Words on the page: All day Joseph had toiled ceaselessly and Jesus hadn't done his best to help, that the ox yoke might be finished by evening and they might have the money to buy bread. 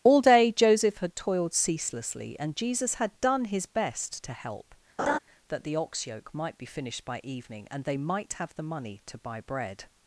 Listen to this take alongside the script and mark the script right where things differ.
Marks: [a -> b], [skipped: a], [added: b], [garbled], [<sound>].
All day Joseph had toiled ceaselessly and Jesus [hadn't -> had] done his best to help, [laugh] that the ox yoke might be finished by evening and they might have the money to buy bread.